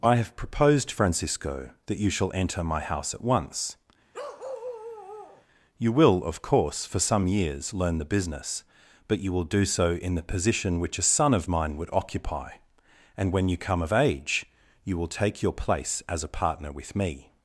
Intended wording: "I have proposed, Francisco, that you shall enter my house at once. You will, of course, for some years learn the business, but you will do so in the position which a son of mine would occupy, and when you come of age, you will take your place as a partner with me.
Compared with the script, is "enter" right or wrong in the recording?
right